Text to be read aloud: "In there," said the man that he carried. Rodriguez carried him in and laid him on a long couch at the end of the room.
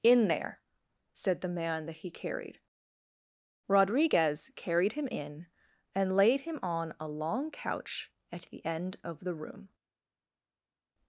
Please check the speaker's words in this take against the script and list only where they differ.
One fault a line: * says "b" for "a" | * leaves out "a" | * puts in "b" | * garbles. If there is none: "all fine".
all fine